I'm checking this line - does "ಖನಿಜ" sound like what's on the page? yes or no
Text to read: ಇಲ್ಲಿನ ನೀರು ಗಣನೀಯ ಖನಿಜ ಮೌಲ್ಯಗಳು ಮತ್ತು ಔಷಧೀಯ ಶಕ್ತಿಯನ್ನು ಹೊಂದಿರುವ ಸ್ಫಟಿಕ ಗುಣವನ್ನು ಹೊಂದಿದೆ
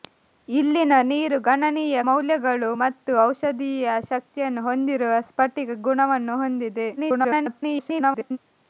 no